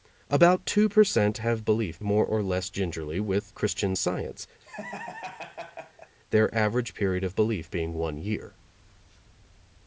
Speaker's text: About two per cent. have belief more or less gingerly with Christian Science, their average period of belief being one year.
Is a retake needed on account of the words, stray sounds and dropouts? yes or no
yes